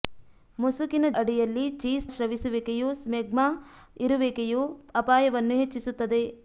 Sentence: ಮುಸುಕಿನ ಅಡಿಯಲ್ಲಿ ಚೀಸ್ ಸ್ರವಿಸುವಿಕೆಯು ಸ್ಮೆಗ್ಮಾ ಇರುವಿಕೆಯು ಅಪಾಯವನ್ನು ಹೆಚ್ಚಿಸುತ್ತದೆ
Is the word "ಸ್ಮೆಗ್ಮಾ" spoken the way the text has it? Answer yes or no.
yes